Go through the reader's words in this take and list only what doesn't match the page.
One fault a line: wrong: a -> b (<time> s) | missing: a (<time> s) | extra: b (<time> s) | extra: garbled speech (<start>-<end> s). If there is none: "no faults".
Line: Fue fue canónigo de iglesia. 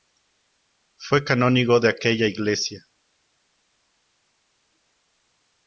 missing: fue (1.2 s)
extra: aquella (1.9 s)